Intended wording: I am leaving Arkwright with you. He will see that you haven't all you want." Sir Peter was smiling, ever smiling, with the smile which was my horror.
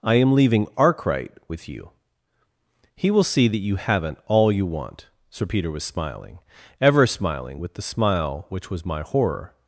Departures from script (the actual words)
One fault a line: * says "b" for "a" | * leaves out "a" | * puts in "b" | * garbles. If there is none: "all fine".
all fine